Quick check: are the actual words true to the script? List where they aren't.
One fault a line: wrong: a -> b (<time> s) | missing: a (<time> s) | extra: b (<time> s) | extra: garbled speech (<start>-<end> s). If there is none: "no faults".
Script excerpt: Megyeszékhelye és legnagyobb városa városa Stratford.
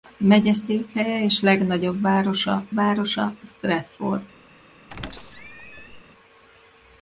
no faults